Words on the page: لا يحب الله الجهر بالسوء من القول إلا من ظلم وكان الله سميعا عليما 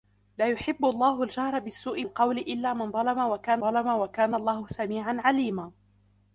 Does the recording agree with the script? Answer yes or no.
no